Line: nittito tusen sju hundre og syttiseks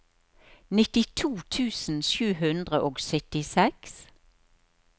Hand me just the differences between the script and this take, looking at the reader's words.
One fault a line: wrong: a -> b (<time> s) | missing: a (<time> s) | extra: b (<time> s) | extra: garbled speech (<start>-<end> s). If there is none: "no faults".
no faults